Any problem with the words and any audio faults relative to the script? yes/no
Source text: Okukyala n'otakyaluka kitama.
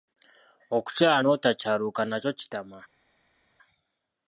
yes